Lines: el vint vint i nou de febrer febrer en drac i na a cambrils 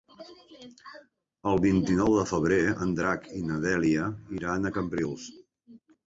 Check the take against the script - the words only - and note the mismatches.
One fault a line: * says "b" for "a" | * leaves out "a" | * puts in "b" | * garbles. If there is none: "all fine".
* leaves out "vint"
* leaves out "febrer"
* puts in "dèlia iran"